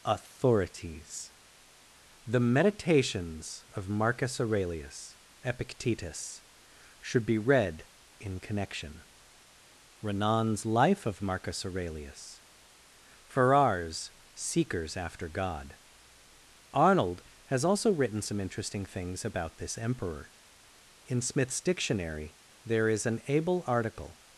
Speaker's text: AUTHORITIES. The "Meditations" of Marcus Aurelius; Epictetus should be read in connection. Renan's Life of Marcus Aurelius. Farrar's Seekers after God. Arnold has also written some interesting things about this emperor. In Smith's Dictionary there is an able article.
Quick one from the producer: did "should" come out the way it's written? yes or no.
yes